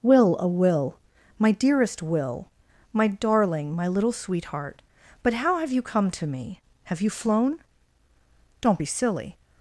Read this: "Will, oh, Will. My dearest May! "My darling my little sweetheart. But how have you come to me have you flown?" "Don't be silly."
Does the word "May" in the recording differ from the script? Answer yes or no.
yes